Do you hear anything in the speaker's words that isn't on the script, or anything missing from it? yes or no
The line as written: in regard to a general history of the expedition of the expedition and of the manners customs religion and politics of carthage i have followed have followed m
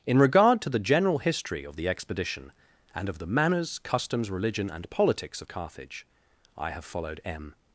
yes